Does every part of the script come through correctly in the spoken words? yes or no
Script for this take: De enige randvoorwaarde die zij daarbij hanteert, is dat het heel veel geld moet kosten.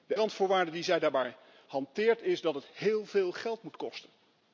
no